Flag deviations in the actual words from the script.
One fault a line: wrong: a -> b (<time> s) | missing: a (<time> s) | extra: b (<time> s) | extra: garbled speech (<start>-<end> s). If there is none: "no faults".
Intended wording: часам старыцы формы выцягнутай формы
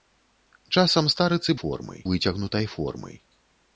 no faults